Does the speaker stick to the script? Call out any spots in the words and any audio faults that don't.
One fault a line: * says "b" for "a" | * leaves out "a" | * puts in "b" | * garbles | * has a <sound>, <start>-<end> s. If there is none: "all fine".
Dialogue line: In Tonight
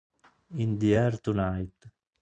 * puts in "the Air"